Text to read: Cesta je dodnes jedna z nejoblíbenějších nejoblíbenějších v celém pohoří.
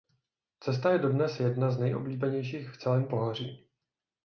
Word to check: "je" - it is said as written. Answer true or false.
true